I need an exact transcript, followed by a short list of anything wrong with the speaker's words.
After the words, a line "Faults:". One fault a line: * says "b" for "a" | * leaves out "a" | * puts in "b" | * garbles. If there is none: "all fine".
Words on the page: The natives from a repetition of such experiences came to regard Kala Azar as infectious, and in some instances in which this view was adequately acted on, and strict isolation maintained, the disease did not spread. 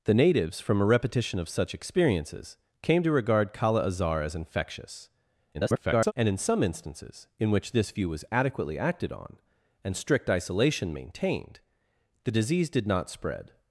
The natives from a repetition of such experiences came to regard Kala Azar as infectious, [garbled] and in some instances in which this view was adequately acted on, and strict isolation maintained, the disease did not spread.
Faults:
* garbles